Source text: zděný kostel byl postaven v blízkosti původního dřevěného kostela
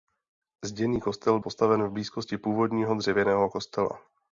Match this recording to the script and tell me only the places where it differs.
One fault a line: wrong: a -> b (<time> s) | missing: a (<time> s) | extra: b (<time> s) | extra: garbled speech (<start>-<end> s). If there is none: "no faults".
missing: byl (1.4 s)